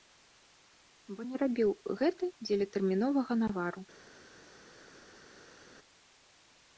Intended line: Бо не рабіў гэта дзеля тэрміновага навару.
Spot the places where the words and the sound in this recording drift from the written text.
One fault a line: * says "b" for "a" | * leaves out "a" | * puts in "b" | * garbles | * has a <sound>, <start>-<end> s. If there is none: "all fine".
all fine